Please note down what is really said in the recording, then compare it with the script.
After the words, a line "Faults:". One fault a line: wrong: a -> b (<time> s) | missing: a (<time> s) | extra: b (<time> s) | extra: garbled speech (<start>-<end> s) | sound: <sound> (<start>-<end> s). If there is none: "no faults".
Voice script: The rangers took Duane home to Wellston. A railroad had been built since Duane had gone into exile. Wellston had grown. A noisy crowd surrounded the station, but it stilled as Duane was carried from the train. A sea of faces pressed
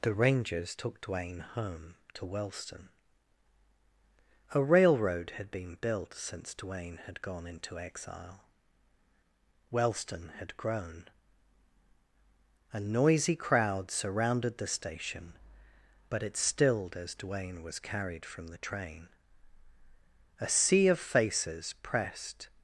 The rangers took Duane home to Wellston. A railroad had been built since Duane had gone into exile. Wellston had grown. A noisy crowd surrounded the station, but it stilled as Duane was carried from the train. A sea of faces pressed
Faults:
no faults